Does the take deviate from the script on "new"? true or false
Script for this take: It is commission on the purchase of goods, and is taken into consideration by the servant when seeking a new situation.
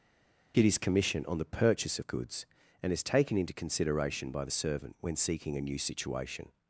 false